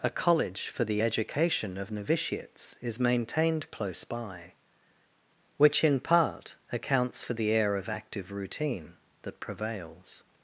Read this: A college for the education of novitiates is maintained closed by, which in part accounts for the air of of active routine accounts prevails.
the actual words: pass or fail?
fail